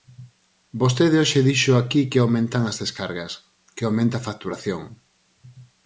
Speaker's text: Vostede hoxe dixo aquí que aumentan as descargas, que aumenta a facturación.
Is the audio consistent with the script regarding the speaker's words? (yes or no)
yes